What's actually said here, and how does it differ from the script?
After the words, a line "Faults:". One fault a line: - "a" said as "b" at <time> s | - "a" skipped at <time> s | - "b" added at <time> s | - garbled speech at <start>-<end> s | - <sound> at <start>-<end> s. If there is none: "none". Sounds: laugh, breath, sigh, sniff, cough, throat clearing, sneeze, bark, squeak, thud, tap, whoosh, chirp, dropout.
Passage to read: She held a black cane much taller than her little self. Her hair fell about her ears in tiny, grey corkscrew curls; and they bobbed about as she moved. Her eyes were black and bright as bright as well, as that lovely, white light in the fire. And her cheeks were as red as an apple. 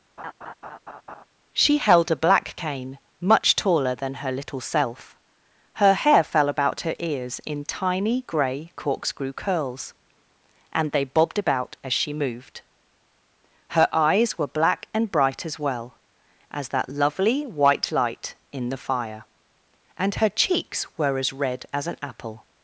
She held a black cane much taller than her little self. Her hair fell about her ears in tiny, grey corkscrew curls; and they bobbed about as she moved. Her eyes were black and bright as well, as that lovely, white light in the fire. And her cheeks were as red as an apple.
Faults:
- laugh at 0.2-1.2 s
- "bright as" skipped at 15.6 s